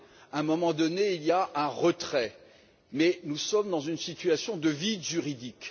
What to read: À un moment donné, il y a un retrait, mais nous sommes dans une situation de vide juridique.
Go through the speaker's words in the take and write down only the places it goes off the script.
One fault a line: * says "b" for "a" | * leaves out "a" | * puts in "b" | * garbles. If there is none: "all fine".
all fine